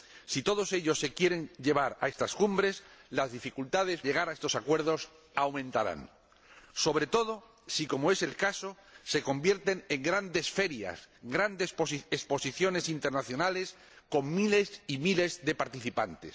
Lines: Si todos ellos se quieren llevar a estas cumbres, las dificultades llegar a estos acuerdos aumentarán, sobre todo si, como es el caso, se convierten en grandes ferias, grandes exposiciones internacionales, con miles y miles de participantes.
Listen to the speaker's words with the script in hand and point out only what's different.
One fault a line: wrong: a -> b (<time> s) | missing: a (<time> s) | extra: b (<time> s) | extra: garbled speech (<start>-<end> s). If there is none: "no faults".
no faults